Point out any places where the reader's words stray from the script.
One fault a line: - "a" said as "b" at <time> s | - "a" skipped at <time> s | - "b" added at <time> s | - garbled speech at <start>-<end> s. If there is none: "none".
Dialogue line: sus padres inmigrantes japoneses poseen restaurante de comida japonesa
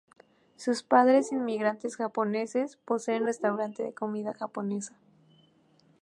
none